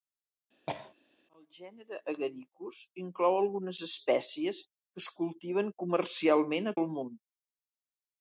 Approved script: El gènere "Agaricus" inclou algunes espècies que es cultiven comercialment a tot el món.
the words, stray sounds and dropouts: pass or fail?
fail